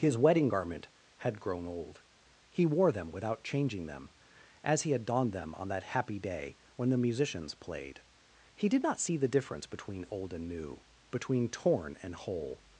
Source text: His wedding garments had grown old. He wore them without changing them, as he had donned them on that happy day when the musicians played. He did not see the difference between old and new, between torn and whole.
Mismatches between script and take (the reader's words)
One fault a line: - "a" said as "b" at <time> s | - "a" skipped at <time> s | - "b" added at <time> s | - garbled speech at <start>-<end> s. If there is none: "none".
- "garments" said as "garment" at 0.5 s